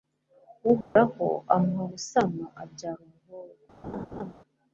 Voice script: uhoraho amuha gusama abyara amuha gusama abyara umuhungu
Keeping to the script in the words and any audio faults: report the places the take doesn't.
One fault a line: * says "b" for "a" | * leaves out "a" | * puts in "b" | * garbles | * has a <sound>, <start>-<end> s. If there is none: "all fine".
* has a dropout, 0.8-1.0 s
* leaves out "amuha gusama abyara"
* has a laugh, 3.8-4.3 s